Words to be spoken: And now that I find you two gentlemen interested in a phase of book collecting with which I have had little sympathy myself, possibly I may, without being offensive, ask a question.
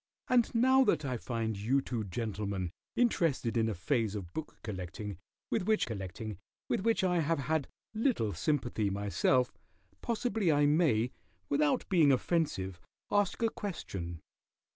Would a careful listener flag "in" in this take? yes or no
no